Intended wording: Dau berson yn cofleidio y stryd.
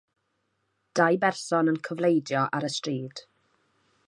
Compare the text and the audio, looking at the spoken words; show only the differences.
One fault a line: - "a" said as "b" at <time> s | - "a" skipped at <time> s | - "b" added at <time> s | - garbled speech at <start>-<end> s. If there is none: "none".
- "ar" added at 2.6 s